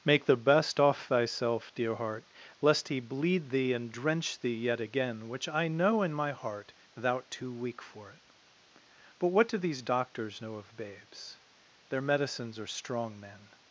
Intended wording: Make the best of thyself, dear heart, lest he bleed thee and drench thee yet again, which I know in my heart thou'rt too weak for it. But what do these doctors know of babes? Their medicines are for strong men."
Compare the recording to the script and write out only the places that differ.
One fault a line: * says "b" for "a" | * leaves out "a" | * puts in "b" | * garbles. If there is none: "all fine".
* says "off" for "of"
* leaves out "for"